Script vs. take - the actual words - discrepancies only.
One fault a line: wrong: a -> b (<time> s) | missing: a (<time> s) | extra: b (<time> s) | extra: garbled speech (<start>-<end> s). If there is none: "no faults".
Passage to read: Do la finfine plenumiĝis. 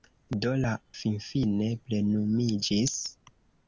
no faults